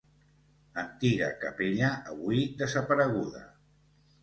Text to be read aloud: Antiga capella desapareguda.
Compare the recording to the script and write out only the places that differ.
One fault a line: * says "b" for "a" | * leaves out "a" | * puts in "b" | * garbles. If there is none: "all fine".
* puts in "avui"